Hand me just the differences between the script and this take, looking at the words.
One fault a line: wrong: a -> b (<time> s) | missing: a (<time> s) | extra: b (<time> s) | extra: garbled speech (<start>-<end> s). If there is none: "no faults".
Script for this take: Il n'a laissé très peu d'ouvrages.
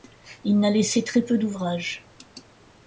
no faults